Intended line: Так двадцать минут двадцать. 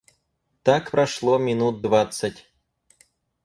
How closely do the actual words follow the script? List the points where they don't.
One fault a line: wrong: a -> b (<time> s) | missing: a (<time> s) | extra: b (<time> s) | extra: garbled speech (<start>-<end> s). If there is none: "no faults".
wrong: двадцать -> прошло (0.9 s)